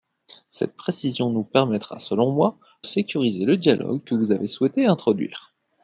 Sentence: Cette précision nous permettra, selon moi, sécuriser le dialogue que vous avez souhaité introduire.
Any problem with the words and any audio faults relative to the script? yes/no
no